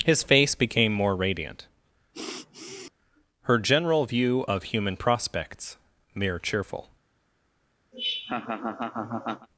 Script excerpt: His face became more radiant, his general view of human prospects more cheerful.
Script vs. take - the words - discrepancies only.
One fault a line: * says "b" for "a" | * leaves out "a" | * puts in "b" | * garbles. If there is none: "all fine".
* says "her" for "his"
* says "mere" for "more"